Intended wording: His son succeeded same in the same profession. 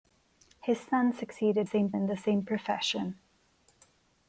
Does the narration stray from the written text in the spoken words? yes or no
no